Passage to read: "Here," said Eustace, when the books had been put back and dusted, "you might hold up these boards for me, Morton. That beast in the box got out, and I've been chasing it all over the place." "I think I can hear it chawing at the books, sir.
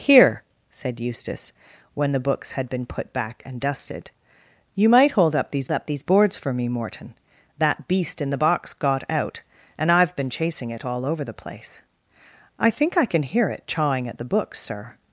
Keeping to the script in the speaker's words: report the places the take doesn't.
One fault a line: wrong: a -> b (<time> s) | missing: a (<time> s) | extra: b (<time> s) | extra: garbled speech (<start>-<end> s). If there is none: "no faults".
extra: up these (5.7 s)